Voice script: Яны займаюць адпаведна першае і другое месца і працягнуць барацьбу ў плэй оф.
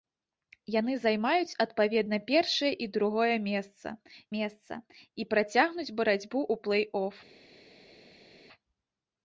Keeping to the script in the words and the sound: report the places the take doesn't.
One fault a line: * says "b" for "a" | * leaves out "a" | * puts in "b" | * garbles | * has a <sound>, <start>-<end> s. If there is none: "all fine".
* puts in "месца"